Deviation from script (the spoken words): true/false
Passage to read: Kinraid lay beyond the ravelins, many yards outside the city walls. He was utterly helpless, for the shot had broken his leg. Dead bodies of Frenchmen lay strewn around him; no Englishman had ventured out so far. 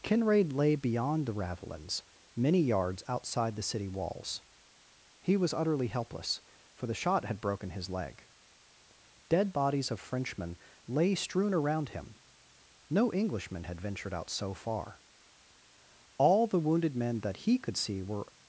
true